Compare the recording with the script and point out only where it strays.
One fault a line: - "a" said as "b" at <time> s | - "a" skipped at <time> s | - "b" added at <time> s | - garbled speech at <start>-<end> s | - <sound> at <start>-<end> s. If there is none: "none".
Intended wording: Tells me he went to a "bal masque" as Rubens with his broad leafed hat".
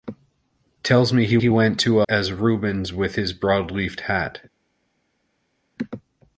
- "he" added at 1.4 s
- "a bal masque" skipped at 2.0 s